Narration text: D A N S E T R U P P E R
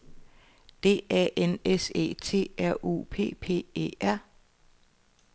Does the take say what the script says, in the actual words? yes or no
yes